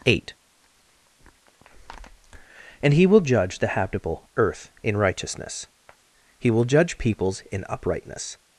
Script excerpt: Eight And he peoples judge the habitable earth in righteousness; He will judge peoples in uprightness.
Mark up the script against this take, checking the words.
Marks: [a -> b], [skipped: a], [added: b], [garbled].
Eight And he [peoples -> will] judge the habitable earth in righteousness; He will judge peoples in uprightness.